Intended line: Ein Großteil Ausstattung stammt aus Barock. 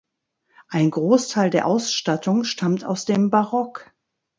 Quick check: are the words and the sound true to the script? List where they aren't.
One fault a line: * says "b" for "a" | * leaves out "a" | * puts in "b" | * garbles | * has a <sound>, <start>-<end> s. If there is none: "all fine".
* puts in "der"
* puts in "dem"